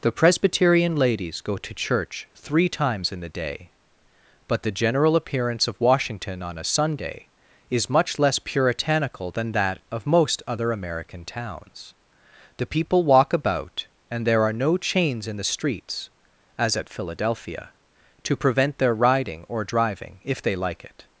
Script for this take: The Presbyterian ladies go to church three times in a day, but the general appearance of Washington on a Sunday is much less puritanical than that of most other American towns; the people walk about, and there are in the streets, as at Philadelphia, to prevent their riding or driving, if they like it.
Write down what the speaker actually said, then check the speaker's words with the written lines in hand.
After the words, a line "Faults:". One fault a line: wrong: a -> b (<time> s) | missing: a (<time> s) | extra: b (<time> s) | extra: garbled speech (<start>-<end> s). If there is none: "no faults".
The Presbyterian ladies go to church three times in the day, but the general appearance of Washington on a Sunday is much less puritanical than that of most other American towns; the people walk about, and there are no chains in the streets, as at Philadelphia, to prevent their riding or driving, if they like it.
Faults:
wrong: a -> the (3.2 s)
extra: no chains (14.5 s)